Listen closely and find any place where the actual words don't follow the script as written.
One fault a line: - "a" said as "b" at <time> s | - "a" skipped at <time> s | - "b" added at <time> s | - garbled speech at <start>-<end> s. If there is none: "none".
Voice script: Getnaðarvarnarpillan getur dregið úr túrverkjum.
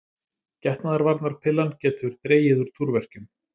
none